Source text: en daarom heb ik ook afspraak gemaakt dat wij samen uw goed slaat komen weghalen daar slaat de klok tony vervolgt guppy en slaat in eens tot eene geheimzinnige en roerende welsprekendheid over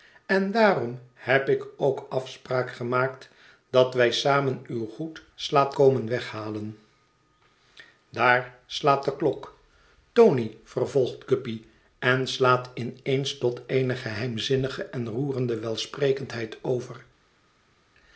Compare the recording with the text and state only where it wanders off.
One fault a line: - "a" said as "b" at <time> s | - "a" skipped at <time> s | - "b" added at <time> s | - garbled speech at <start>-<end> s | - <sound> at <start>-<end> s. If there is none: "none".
none